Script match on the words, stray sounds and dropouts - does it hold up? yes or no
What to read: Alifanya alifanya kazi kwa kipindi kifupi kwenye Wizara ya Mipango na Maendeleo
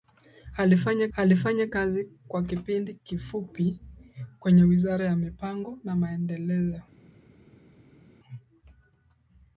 yes